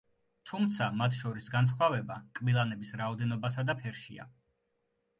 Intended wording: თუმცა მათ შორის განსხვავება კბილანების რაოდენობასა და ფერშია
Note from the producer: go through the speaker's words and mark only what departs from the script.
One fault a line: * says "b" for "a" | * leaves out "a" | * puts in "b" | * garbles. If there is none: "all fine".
all fine